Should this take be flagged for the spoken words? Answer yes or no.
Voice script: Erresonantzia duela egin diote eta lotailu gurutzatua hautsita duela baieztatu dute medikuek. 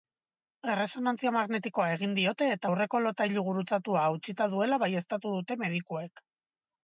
yes